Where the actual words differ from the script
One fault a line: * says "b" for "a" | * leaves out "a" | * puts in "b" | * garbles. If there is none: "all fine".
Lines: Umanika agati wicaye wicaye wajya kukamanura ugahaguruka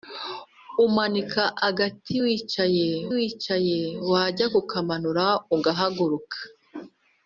all fine